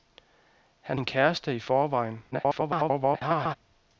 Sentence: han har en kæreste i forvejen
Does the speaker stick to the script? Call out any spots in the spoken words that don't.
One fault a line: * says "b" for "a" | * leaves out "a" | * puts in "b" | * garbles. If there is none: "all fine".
* leaves out "har"
* garbles